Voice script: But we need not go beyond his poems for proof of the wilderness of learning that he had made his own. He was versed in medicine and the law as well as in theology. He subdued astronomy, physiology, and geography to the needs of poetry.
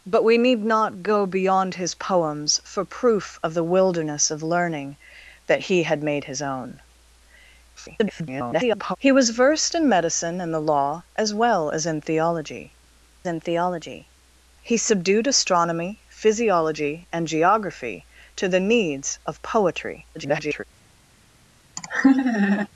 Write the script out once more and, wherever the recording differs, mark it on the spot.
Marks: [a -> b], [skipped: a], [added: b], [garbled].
But we need not go beyond his poems for proof of the wilderness of learning that he had made his own. [garbled] He was versed in medicine and the law as well as in theology. [added: in theology] He subdued astronomy, physiology, and geography to the needs of poetry. [garbled]